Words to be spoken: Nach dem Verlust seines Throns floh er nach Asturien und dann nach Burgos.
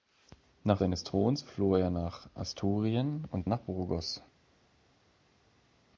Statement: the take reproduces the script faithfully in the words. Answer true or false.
false